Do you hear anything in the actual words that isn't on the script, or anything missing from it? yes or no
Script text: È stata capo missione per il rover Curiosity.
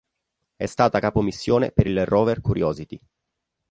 no